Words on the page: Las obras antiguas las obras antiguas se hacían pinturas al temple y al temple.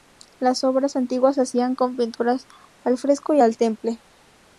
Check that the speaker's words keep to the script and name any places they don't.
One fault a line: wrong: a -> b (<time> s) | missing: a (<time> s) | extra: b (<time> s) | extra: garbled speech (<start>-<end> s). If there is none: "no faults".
missing: las obras antiguas (1.4 s)
extra: con (1.8 s)
wrong: temple -> fresco (3.0 s)